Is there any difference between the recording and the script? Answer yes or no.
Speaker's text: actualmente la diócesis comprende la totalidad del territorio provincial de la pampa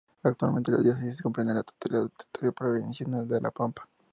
no